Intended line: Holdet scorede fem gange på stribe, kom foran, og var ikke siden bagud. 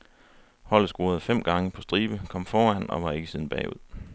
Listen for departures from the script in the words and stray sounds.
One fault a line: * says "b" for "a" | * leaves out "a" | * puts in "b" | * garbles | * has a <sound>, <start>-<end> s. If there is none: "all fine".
all fine